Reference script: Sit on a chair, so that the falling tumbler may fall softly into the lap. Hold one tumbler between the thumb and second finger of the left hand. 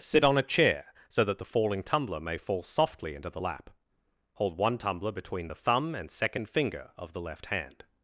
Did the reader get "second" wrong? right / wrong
right